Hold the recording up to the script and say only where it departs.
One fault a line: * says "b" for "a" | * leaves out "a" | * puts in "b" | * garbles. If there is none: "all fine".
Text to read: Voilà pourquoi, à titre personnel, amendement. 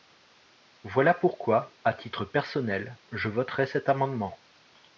* puts in "je voterai cet"